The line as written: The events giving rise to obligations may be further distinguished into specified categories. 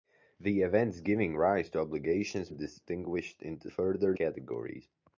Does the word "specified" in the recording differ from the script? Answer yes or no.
yes